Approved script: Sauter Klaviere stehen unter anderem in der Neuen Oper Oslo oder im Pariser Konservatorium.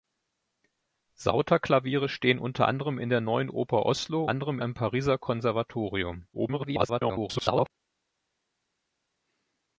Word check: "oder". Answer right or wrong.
wrong